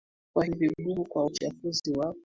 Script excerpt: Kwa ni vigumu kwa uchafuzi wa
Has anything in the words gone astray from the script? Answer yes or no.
no